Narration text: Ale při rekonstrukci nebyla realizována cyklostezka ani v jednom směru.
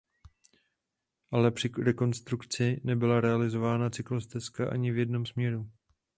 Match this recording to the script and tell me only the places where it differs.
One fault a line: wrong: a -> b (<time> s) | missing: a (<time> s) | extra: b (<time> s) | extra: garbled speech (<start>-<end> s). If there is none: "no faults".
no faults